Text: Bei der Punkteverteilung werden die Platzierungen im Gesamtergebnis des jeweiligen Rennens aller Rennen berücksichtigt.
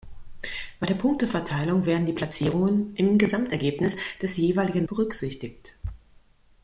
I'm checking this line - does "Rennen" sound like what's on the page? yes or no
no